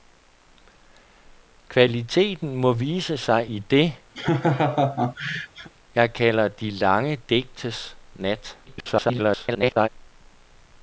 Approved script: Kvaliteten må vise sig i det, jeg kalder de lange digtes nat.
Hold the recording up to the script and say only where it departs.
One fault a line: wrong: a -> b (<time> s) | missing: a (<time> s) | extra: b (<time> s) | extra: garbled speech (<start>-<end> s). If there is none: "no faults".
extra: garbled speech (8.7-9.9 s)